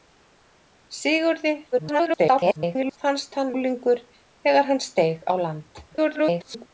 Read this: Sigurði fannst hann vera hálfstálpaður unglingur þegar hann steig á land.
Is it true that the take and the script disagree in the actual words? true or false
true